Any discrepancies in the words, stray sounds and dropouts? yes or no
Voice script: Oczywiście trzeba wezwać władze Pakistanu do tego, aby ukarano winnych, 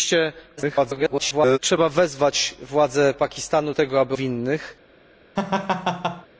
yes